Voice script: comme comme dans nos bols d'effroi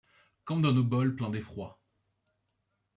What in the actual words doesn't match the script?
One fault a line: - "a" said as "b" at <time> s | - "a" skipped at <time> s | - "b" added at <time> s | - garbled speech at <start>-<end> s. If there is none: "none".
- "comme" skipped at 0.6 s
- "pleins" added at 1.1 s